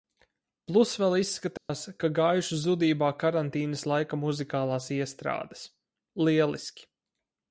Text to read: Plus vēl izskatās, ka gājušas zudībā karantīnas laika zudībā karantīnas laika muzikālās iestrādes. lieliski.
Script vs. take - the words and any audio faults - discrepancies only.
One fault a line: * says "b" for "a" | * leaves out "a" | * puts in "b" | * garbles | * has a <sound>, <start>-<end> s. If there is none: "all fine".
* has a dropout, 1.6-1.7 s
* leaves out "zudībā karantīnas laika"